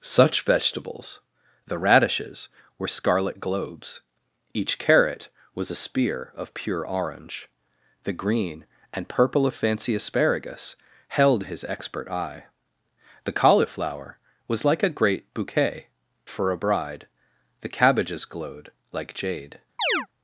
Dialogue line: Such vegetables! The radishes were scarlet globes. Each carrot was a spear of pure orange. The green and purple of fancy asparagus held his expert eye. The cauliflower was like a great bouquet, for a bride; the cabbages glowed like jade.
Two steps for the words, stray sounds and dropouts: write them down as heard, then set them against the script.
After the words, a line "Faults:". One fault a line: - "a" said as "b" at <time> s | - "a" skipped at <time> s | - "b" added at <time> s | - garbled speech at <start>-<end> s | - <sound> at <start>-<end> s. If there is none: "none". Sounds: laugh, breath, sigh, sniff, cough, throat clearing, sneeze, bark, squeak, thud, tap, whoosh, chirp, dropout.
Such vegetables! The radishes were scarlet globes. Each carrot was a spear of pure orange. The green and purple of fancy asparagus held his expert eye. The cauliflower was like a great bouquet, for a bride; the cabbages glowed like jade.
Faults:
- chirp at 19.8-20.1 s